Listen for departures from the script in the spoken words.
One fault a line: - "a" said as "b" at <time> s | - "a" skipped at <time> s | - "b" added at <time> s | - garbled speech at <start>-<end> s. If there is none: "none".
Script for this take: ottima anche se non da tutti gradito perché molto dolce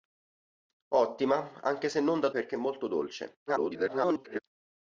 - "tutti gradito" skipped at 2.3 s
- garbled speech at 3.5-4.4 s